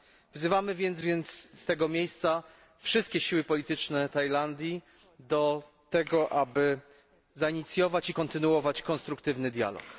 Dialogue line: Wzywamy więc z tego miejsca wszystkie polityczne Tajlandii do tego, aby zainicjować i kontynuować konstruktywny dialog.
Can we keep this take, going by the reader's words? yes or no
no